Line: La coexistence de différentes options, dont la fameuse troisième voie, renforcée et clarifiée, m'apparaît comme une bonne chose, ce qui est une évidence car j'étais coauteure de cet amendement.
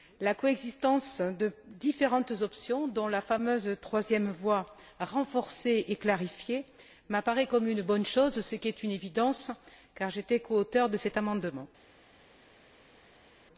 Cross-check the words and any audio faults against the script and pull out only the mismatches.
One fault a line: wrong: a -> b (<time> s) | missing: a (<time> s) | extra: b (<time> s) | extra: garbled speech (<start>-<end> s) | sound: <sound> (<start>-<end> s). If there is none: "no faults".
no faults